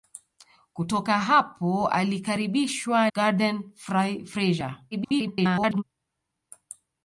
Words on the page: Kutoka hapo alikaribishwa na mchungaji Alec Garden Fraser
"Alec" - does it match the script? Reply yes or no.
no